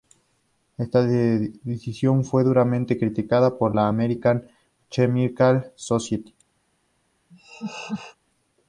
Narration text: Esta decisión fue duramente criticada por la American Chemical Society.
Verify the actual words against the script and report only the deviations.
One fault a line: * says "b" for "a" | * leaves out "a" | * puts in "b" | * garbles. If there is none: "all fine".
all fine